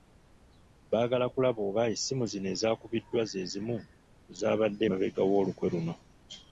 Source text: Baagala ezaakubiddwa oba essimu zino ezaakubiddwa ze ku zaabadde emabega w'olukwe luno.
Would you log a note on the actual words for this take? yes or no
yes